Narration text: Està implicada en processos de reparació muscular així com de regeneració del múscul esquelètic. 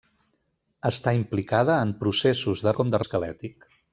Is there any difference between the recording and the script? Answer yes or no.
yes